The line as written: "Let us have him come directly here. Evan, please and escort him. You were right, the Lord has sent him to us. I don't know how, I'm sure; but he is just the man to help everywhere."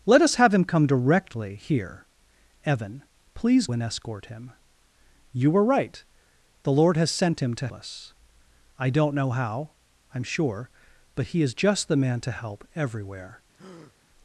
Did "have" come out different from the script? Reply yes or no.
no